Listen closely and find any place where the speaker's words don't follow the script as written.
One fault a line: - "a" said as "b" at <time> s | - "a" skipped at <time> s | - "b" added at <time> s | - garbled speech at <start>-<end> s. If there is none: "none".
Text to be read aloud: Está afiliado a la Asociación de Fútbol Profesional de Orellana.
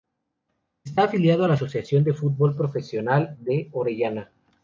none